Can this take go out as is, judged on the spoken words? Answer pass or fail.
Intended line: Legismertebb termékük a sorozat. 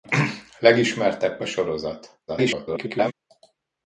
fail